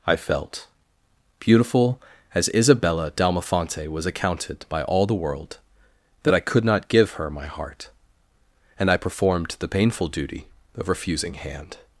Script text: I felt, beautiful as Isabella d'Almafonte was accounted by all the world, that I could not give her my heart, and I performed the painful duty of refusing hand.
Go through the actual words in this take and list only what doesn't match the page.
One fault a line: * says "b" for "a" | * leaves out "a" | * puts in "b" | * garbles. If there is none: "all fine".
all fine